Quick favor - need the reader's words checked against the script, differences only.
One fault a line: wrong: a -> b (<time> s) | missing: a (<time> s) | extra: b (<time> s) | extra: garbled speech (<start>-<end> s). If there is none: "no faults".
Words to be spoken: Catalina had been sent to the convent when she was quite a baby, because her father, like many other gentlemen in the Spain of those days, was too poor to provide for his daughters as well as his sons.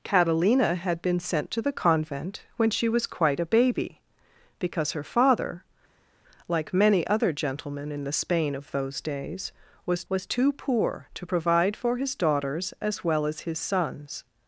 extra: was (10.1 s)